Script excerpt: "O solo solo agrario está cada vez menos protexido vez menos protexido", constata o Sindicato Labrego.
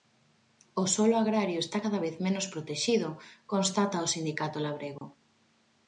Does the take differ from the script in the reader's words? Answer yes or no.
yes